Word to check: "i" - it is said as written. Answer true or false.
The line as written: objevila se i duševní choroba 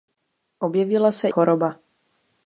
false